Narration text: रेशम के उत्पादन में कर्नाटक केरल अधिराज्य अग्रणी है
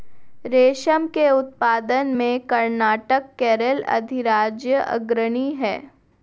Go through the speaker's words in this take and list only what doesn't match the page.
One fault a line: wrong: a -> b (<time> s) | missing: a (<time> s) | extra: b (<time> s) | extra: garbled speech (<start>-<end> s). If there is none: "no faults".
no faults